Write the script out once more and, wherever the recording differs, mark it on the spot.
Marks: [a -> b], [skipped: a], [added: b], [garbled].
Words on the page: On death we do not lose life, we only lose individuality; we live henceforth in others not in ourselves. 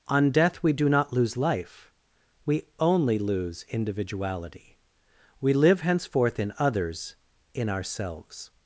On death we do not lose life, we only lose individuality; we live henceforth in others [skipped: not] in ourselves.